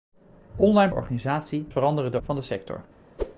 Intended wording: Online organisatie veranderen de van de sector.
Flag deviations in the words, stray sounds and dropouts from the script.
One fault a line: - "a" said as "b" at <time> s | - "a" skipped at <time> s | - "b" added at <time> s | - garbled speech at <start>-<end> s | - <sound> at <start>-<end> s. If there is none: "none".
- whoosh at 3.2-3.4 s